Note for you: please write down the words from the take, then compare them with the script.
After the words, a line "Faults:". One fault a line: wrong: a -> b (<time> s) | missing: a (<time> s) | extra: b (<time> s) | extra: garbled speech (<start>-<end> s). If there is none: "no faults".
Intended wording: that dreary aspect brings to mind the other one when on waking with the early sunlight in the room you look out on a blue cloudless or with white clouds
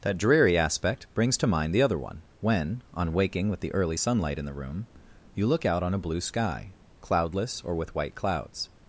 that dreary aspect brings to mind the other one when on waking with the early sunlight in the room you look out on a blue sky cloudless or with white clouds
Faults:
extra: sky (6.2 s)